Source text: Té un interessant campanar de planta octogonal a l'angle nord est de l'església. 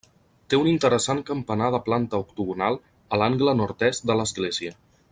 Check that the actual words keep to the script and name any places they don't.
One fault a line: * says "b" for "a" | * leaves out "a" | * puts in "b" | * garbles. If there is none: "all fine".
all fine